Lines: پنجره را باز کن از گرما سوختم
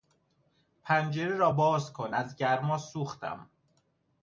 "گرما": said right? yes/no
yes